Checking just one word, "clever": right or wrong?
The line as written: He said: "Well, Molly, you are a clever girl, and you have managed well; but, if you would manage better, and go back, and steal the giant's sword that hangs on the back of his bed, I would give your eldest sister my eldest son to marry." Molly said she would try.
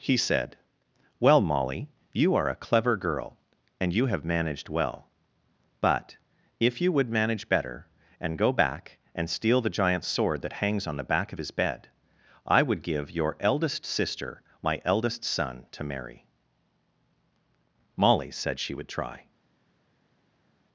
right